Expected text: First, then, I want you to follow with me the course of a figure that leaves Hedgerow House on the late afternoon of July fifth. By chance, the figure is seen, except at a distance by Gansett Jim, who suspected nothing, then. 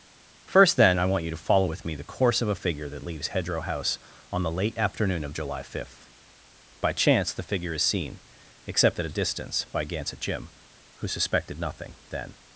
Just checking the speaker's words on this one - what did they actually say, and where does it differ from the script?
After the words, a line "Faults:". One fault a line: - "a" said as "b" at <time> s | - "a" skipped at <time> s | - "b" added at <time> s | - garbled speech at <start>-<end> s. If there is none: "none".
First, then, I want you to follow with me the course of a figure that leaves Hedgerow House on the late afternoon of July fifth. By chance, the figure is seen, except at a distance by Gansett Jim, who suspected nothing, then.
Faults:
none